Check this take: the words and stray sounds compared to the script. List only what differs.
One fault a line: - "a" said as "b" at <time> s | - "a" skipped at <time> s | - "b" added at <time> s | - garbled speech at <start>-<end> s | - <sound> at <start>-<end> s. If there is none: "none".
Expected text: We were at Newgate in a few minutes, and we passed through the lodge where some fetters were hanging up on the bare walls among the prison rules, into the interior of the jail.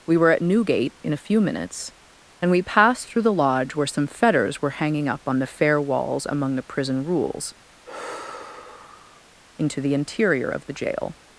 - "bare" said as "fair" at 5.5 s
- sigh at 7.8-9.2 s